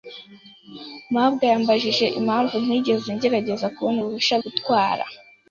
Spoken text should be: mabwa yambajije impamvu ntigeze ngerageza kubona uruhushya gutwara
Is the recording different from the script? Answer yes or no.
no